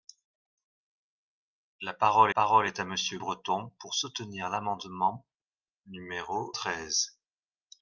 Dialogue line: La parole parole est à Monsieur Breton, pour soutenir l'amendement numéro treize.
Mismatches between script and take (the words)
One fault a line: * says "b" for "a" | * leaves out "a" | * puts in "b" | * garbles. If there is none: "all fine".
all fine